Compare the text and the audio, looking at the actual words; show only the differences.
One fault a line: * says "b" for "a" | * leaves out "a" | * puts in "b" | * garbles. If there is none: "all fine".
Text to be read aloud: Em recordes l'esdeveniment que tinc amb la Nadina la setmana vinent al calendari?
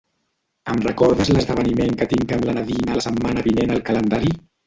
all fine